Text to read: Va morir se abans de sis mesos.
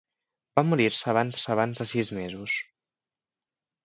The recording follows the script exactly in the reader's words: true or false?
false